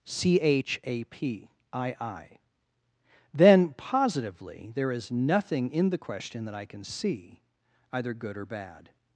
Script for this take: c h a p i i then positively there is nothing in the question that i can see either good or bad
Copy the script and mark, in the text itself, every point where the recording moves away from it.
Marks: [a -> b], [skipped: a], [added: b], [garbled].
c h a p i i then positively there is nothing in the question that i can see either good or bad